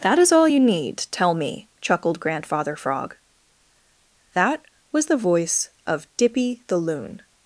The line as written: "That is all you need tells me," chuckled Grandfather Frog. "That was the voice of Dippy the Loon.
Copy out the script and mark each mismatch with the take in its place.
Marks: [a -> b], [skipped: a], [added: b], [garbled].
"That is all you need [tells -> tell] me," chuckled Grandfather Frog. "That was the voice of Dippy the Loon.